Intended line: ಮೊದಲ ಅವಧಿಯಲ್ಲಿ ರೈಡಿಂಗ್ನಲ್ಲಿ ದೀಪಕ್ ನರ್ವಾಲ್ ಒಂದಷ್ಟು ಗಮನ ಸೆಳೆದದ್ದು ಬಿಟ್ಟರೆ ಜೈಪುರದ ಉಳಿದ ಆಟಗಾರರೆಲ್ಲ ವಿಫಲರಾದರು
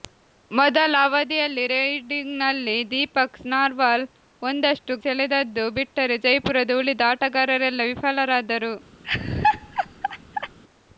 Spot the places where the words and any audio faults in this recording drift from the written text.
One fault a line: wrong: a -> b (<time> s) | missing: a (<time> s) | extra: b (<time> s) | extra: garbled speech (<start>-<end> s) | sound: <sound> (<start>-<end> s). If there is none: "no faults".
missing: ಗಮನ (5.0 s)
sound: laugh (9.0-10.6 s)